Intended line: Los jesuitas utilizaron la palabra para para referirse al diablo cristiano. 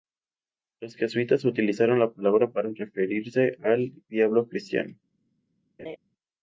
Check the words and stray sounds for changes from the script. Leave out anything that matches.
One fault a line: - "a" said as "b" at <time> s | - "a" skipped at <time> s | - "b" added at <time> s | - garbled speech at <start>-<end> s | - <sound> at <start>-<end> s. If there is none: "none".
- "para" skipped at 2.7 s
- laugh at 5.8-6.0 s